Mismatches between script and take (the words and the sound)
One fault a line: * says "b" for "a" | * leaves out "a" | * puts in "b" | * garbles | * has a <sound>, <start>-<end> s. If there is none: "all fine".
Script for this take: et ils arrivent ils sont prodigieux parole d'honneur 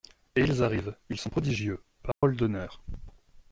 * has a dropout, 2.1-2.2 s